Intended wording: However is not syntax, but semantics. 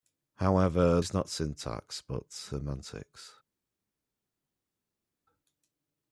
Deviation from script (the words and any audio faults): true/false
false